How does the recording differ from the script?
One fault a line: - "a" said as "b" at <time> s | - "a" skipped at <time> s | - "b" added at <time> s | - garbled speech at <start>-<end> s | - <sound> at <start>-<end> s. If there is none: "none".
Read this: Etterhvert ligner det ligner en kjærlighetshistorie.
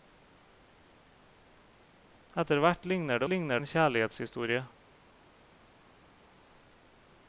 none